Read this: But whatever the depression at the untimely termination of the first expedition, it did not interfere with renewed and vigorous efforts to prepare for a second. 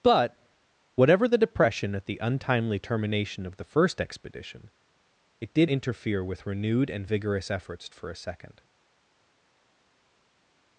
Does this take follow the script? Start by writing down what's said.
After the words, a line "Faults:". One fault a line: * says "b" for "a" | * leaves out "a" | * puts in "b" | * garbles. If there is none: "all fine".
But whatever the depression at the untimely termination of the first expedition, it did interfere with renewed and vigorous efforts for a second.
Faults:
* leaves out "not"
* leaves out "to prepare"